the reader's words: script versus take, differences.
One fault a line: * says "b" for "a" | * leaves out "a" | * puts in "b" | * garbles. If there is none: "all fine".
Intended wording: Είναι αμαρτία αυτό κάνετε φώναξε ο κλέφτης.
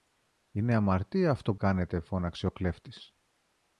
all fine